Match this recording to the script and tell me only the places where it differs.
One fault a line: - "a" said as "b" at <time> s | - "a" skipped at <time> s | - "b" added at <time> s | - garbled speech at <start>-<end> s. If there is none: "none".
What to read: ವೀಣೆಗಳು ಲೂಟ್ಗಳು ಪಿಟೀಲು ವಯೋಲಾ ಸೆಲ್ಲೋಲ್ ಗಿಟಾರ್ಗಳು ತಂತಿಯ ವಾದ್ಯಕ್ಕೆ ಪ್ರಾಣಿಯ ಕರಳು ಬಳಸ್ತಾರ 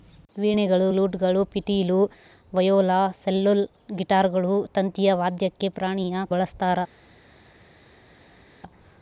- "ಕರಳು" skipped at 6.3 s